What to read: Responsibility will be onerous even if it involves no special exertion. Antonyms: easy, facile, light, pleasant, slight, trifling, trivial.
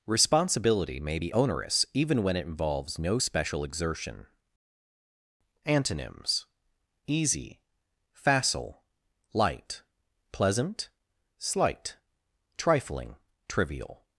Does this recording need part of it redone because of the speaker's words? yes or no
yes